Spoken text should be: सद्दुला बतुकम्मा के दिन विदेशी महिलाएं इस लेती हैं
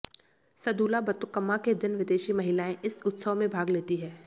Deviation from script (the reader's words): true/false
true